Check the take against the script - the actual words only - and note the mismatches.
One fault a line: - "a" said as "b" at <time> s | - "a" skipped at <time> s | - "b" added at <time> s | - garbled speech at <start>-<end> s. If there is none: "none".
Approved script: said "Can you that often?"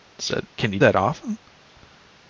none